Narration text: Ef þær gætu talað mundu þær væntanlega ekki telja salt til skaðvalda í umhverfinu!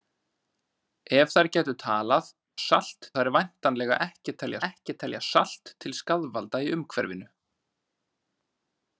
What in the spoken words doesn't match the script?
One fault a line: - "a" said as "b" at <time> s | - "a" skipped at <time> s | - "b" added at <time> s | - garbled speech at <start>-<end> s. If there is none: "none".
- "mundu" said as "salt" at 2.6 s
- "ekki telja" added at 4.7 s